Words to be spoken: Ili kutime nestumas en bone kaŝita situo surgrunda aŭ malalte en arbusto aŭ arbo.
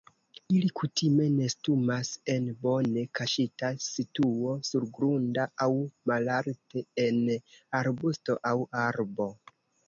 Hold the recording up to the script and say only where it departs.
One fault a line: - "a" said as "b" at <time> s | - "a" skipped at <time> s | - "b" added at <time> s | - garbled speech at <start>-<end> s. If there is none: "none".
none